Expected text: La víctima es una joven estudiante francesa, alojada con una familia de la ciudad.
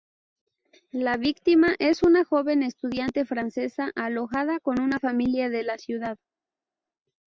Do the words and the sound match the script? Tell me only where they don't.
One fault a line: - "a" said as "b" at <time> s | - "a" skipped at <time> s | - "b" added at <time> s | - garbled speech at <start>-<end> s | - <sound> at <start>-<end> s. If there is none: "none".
none